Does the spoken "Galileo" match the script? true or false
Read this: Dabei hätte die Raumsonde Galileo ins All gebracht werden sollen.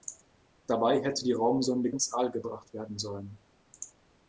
false